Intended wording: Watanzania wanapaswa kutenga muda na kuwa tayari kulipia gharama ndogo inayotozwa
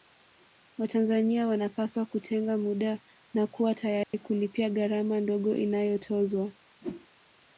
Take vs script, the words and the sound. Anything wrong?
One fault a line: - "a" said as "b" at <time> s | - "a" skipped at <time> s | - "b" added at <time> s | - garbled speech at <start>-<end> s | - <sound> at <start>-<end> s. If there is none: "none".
- dropout at 4.0-4.1 s
- whoosh at 6.8-7.1 s